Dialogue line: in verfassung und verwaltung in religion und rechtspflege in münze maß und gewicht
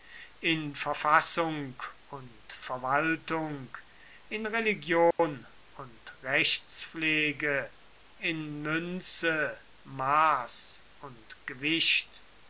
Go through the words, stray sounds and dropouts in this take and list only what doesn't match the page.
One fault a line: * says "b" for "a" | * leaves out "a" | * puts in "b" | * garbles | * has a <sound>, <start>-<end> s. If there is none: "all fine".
* has a dropout, 5.1-5.2 s